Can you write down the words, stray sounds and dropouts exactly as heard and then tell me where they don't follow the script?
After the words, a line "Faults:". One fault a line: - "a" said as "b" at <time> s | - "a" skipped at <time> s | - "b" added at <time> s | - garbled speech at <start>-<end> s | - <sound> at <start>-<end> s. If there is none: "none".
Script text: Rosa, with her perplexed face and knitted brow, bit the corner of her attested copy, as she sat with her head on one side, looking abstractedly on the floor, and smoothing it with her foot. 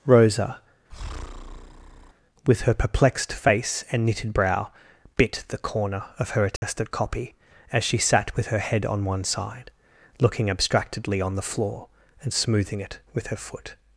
Rosa, with her perplexed face and knitted brow, bit the corner of her attested copy, as she sat with her head on one side, looking abstractedly on the floor, and smoothing it with her foot.
Faults:
- breath at 0.9-2.1 s
- dropout at 6.6-6.6 s